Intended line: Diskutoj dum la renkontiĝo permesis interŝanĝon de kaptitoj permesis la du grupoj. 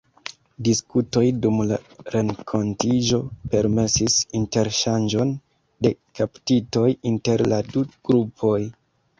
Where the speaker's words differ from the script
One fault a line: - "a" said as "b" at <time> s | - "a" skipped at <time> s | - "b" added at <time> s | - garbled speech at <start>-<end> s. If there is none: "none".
- "permesis" said as "inter" at 7.1 s